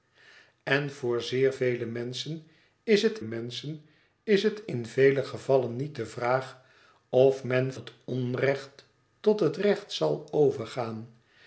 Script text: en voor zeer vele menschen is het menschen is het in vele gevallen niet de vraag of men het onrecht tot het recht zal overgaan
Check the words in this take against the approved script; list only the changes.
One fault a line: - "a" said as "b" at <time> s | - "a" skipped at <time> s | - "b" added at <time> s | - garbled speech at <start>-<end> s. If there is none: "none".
none